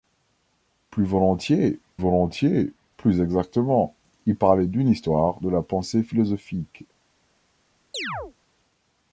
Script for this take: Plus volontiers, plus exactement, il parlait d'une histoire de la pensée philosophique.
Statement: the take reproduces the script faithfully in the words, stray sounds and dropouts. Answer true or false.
false